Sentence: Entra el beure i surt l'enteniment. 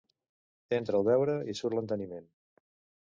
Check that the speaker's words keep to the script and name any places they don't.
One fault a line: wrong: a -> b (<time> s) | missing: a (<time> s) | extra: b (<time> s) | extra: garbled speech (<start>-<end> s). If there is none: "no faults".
no faults